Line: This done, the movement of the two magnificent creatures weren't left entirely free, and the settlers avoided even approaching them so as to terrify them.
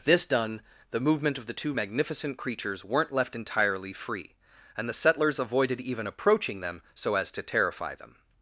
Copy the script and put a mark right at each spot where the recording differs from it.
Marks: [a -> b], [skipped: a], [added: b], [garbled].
This done, the movement of the two magnificent creatures weren't left entirely free, and the settlers avoided even approaching them so as to terrify them.